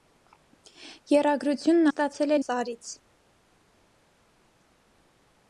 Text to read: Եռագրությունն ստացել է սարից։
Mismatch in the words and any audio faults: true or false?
false